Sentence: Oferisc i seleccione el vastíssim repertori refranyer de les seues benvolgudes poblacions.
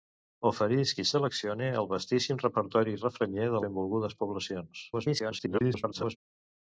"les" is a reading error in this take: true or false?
true